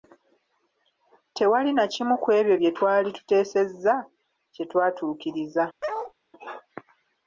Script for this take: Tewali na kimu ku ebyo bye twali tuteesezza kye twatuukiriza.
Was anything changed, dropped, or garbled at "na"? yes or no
no